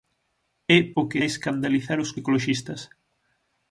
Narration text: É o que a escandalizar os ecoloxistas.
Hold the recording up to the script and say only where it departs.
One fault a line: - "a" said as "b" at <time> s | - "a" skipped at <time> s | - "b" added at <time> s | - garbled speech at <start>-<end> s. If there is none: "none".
none